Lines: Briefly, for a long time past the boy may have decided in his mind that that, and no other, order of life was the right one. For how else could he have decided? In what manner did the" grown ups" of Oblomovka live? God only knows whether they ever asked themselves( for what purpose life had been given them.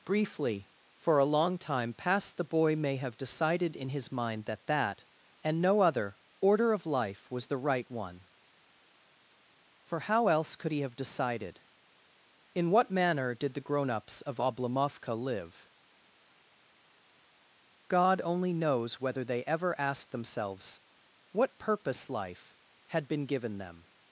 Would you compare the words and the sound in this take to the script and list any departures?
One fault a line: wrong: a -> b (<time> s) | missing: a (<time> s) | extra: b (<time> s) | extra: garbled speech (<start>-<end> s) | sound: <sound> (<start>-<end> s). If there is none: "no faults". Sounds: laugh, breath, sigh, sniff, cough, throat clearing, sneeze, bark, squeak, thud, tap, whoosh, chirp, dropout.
missing: for (20.8 s)